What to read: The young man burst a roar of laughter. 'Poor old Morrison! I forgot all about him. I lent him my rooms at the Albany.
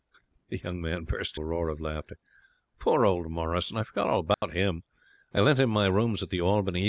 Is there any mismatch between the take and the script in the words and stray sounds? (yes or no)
yes